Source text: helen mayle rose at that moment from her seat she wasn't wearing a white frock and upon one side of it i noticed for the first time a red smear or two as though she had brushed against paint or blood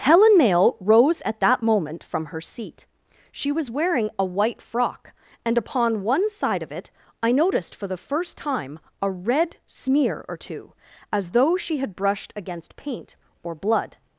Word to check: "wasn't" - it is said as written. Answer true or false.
false